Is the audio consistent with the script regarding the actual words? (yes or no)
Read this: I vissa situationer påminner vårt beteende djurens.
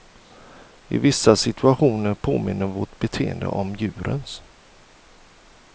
no